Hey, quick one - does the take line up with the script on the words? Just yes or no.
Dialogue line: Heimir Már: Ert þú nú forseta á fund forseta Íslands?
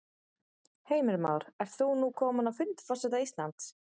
no